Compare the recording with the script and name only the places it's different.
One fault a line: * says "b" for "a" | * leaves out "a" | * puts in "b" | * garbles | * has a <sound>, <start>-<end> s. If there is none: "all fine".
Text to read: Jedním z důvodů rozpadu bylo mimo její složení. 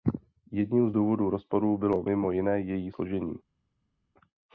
* puts in "jiné"